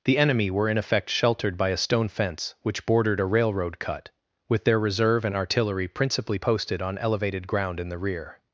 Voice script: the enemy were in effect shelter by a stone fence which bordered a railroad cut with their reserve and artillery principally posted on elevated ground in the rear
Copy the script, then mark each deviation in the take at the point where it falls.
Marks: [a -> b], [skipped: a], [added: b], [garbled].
the enemy were in effect [shelter -> sheltered] by a stone fence which bordered a railroad cut with their reserve and artillery principally posted on elevated ground in the rear